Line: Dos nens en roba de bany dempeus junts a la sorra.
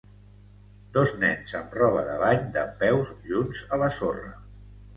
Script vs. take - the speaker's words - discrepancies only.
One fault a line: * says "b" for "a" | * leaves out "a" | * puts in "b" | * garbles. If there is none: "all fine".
* says "amb" for "en"